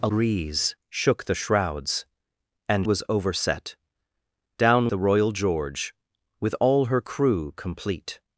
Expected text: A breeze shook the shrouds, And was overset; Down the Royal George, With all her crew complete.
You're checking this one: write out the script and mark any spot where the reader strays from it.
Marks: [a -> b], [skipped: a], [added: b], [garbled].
A breeze shook the shrouds, And was overset; Down the Royal George, With all her crew complete.